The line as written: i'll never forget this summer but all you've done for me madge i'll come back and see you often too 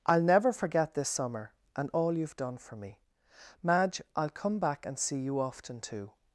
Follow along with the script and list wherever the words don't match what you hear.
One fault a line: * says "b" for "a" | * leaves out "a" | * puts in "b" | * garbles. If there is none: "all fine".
* says "and" for "but"